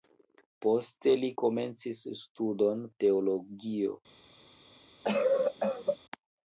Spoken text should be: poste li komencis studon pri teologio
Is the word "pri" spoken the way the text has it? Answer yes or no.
no